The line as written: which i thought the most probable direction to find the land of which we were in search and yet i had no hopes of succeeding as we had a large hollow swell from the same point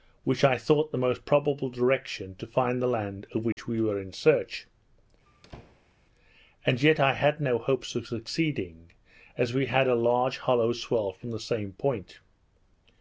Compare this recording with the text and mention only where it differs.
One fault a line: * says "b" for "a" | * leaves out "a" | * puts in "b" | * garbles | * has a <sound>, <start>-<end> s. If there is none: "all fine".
* has a dropout, 3.5-3.6 s
* has a squeak, 5.3-6.0 s